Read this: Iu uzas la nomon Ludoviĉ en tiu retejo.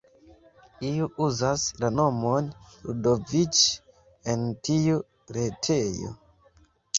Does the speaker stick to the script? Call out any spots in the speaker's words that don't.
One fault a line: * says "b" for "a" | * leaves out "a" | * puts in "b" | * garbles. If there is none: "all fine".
all fine